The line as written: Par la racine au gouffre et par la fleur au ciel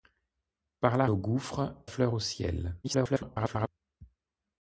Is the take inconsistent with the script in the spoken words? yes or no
yes